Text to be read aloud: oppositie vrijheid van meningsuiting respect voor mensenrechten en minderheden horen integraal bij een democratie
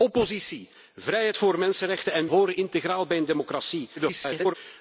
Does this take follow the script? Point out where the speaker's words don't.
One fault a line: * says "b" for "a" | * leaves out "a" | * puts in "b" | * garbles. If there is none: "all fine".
* leaves out "van meningsuiting respect"
* leaves out "minderheden"
* garbles